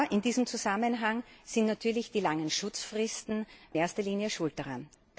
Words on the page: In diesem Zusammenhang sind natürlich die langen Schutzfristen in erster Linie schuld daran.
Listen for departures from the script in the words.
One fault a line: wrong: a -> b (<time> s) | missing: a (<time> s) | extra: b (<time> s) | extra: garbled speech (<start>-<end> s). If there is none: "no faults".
missing: in (3.5 s)